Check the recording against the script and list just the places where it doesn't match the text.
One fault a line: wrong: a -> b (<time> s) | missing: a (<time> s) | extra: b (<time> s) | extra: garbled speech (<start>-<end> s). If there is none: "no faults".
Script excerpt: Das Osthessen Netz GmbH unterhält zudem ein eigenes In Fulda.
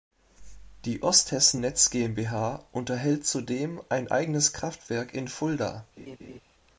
wrong: Das -> Die (0.8 s)
extra: Kraftwerk (4.5 s)